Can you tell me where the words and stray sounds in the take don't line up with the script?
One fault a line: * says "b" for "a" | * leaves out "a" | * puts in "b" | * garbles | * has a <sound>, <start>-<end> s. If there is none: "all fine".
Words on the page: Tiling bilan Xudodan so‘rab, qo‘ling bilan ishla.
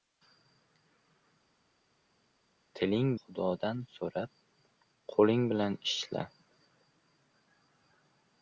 * leaves out "bilan"